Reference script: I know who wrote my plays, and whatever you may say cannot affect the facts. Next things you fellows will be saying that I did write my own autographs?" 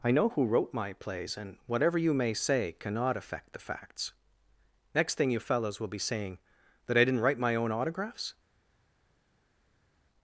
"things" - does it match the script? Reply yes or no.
no